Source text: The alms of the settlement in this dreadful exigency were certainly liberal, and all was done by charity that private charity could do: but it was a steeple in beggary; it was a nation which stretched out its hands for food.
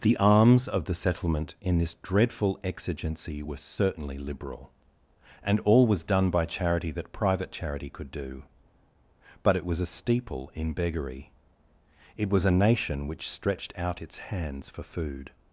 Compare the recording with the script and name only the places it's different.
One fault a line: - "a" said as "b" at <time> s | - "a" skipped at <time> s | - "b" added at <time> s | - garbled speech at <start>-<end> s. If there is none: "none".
none